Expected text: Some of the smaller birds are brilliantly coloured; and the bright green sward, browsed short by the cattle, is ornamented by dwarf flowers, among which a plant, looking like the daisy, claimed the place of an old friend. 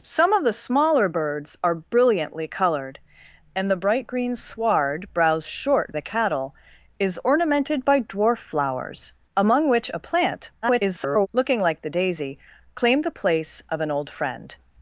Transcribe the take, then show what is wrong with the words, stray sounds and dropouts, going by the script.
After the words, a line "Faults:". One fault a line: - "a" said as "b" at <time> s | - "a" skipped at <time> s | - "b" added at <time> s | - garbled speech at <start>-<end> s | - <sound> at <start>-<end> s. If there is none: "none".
Some of the smaller birds are brilliantly coloured; and the bright green sward, browsed short the cattle, is ornamented by dwarf flowers, among which a plant, [garbled] looking like the daisy, claimed the place of an old friend.
Faults:
- "by" skipped at 6.0 s
- garbled speech at 10.6-11.3 s